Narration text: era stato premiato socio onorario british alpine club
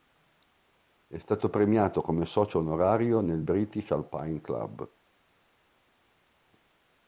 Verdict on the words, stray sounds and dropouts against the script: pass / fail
fail